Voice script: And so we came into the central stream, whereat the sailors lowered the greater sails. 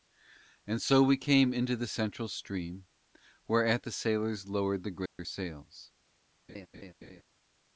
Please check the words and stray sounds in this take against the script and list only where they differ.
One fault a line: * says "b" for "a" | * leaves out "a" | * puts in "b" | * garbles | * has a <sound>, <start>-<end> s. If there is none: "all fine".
* has a dropout, 5.1-5.2 s
* has a laugh, 6.5-7.2 s